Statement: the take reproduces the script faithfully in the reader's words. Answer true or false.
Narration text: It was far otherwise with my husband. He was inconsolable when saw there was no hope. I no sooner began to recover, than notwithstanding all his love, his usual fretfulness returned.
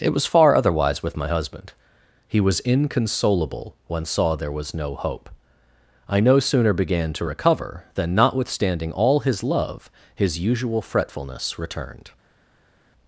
true